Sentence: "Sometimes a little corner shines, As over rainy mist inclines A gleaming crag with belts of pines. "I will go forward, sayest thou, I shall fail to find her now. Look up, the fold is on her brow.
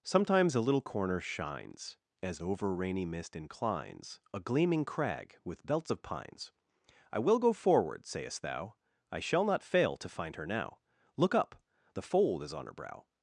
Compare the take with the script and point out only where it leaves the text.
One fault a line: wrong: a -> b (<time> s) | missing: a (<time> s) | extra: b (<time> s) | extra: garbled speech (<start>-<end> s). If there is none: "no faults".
extra: not (9.4 s)